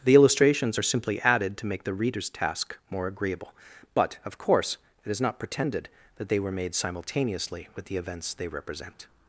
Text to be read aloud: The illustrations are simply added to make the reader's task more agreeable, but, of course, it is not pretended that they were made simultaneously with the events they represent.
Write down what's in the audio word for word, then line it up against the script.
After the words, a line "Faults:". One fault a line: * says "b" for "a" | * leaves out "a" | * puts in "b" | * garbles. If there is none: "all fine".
The illustrations are simply added to make the reader's task more agreeable, but, of course, it is not pretended that they were made simultaneously with the events they represent.
Faults:
all fine